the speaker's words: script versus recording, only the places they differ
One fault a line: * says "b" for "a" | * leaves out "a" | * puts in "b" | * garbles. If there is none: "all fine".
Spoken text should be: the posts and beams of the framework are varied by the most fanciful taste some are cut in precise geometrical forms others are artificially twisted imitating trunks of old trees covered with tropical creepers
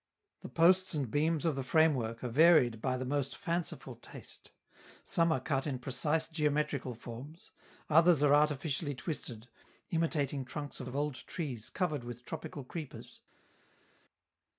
* puts in "of"